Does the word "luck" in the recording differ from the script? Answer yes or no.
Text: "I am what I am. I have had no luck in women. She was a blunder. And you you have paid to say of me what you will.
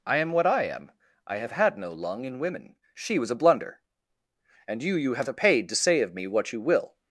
yes